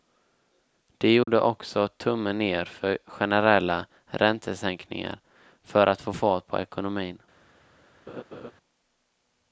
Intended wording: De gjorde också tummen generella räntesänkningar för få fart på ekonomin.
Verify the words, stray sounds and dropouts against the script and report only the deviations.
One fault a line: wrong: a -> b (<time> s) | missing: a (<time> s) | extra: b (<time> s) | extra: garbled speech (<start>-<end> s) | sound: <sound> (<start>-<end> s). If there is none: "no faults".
sound: dropout (1.2-1.3 s)
extra: ner för (2.4 s)
extra: att (5.9 s)
sound: laugh (8.1-8.5 s)